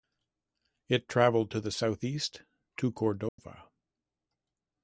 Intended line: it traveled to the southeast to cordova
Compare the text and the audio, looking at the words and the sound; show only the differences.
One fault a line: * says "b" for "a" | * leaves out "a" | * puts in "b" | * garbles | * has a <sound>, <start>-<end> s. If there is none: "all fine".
* has a dropout, 3.3-3.4 s